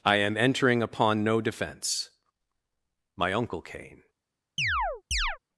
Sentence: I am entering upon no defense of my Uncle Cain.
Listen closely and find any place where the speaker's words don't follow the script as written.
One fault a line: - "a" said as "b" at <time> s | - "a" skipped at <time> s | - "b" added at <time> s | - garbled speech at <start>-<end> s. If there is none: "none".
- "of" skipped at 2.1 s